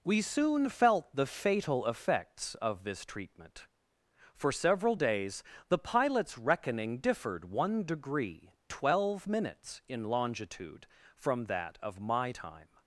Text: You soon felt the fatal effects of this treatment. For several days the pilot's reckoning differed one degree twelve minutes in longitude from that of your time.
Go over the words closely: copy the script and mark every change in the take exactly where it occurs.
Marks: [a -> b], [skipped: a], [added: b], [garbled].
[You -> We] soon felt the fatal effects of this treatment. For several days the pilot's reckoning differed one degree twelve minutes in longitude from that of [your -> my] time.